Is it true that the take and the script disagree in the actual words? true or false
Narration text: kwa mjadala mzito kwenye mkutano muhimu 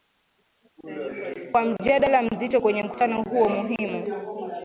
true